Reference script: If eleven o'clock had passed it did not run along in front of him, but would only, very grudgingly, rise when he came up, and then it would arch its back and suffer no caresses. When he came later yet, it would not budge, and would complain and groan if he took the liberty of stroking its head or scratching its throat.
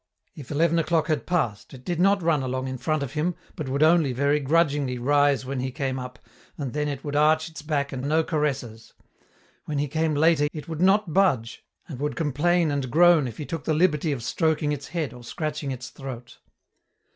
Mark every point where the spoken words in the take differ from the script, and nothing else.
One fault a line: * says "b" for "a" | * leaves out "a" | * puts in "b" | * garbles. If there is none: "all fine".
* leaves out "suffer"
* leaves out "yet"